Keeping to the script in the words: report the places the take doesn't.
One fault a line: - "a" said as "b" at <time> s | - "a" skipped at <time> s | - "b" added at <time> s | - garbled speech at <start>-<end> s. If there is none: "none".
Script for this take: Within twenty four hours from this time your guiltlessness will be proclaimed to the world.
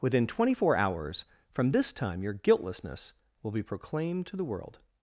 none